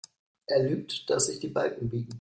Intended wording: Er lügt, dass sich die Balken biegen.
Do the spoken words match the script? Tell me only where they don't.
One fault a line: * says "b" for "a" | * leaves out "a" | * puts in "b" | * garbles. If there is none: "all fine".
all fine